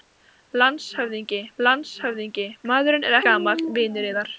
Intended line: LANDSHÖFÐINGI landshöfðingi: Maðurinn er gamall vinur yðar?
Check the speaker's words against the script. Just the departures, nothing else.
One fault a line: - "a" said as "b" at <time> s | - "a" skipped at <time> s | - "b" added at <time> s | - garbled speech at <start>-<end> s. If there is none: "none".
none